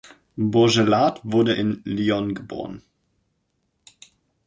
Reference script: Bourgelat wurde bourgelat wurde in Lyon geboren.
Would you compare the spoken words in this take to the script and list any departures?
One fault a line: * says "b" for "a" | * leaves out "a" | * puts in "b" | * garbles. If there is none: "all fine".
* leaves out "bourgelat wurde"